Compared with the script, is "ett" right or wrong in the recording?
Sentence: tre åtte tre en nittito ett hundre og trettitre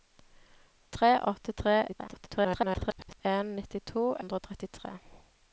wrong